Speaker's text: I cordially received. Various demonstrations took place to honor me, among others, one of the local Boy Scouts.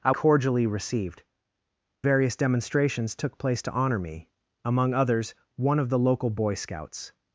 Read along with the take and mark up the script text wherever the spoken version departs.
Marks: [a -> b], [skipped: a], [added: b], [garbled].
I cordially received. Various demonstrations took place to honor me, among others, one of the local Boy Scouts.